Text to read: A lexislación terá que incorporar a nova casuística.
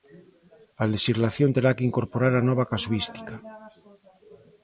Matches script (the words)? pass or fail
pass